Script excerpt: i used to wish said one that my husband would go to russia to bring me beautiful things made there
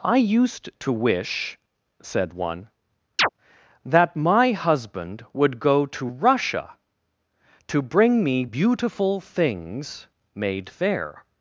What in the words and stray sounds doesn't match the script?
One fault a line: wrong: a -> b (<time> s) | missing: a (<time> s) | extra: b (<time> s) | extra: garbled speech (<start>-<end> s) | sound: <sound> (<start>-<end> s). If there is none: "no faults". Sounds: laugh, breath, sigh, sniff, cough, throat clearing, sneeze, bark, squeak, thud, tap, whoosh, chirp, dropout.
sound: chirp (3.2-3.3 s)
wrong: there -> fair (10.7 s)